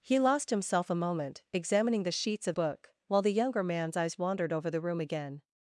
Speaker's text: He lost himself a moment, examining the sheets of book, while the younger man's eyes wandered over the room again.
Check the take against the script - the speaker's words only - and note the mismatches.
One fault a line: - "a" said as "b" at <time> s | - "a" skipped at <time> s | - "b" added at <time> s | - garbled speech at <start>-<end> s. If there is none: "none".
none